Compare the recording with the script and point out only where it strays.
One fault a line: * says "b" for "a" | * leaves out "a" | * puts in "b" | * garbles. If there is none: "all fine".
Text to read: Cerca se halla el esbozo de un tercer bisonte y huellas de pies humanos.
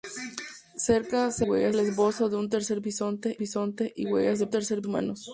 * says "huellas" for "halla"
* puts in "bisonte"
* says "tercer" for "pies"